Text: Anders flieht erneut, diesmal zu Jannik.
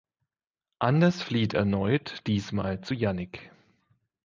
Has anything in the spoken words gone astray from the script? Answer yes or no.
no